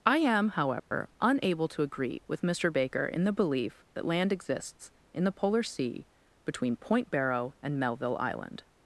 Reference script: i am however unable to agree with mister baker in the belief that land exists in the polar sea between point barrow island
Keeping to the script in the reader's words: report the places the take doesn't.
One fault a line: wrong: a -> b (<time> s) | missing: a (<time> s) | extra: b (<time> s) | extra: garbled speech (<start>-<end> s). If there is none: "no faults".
extra: and melville (7.6 s)